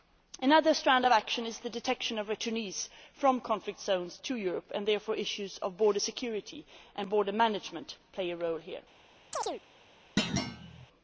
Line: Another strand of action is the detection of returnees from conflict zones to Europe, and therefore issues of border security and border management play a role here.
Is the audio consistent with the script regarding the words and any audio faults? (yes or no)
no